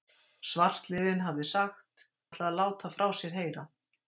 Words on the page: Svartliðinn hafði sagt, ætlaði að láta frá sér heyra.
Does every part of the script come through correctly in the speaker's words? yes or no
yes